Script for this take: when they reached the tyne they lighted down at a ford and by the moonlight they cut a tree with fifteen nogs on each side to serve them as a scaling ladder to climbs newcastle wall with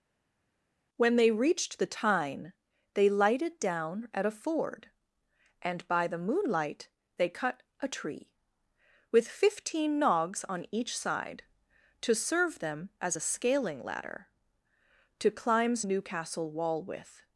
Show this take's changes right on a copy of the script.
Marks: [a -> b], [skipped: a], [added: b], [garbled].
when they reached the tyne they lighted down at a ford and by the moonlight they cut a tree with fifteen nogs on each side to serve them as a scaling ladder to climbs newcastle wall with